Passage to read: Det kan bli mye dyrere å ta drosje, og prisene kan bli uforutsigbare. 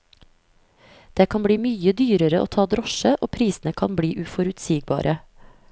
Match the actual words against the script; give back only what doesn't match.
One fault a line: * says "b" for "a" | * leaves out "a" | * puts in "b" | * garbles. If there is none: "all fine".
all fine